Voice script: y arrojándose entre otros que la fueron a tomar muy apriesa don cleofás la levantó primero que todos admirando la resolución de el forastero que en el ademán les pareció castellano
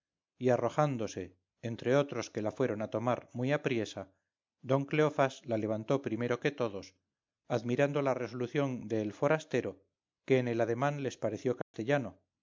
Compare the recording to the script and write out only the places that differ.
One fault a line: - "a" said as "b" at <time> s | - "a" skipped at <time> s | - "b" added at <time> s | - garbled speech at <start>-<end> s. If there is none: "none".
none